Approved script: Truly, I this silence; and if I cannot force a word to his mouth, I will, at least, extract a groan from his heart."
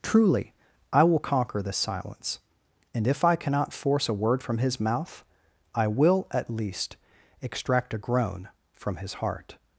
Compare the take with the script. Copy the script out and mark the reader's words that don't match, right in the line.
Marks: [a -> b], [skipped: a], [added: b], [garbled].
Truly, I [added: will conquer] this silence; and if I cannot force a word [to -> from] his mouth, I will, at least, extract a groan from his heart."